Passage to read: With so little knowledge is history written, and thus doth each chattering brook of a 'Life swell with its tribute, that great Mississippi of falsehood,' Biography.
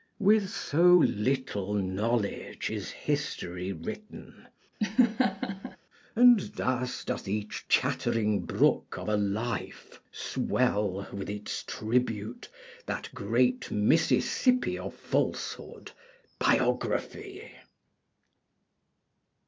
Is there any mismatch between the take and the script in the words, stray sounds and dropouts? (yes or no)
yes